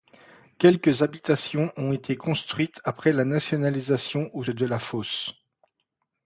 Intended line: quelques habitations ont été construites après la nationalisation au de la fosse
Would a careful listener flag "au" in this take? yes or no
no